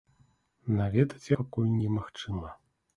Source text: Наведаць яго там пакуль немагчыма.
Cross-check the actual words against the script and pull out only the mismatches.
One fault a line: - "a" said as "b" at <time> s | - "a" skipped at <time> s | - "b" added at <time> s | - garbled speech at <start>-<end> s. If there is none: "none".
- "яго там" skipped at 1.3 s